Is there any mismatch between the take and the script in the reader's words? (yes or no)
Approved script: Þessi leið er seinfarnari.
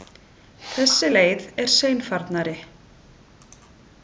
no